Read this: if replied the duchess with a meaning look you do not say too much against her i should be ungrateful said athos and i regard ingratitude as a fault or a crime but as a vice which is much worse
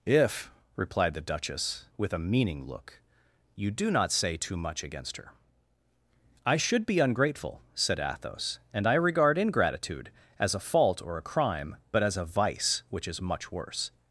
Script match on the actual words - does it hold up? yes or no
yes